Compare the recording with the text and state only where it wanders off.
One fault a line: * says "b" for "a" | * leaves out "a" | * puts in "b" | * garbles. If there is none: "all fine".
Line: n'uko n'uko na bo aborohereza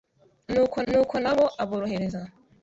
all fine